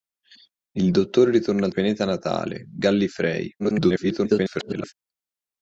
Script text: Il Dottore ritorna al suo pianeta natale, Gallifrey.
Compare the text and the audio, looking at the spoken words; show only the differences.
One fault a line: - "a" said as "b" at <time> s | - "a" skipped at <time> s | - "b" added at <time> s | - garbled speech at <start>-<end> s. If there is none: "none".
- "suo" skipped at 1.7 s
- garbled speech at 3.6-4.9 s